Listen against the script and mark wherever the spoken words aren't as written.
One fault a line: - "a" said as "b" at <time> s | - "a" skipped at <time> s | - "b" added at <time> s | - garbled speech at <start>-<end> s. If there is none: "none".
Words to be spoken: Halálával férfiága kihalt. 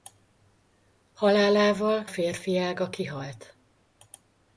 none